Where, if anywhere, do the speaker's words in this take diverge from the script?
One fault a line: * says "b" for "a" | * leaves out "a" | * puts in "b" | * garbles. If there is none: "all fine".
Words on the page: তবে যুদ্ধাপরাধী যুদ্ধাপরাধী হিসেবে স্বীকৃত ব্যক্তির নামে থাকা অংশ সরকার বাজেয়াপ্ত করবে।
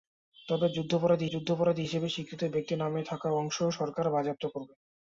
all fine